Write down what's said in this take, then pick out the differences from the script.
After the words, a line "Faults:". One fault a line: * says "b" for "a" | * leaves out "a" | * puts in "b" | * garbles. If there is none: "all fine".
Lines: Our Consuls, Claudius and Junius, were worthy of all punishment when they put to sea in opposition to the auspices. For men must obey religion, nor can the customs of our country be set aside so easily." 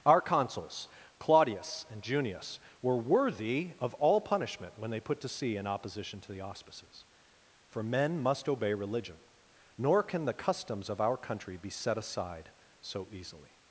Our Consuls, Claudius and Junius, were worthy of all punishment when they put to sea in opposition to the auspices. For men must obey religion, nor can the customs of our country be set aside so easily."
Faults:
all fine